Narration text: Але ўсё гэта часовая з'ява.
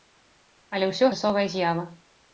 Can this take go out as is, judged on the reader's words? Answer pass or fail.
fail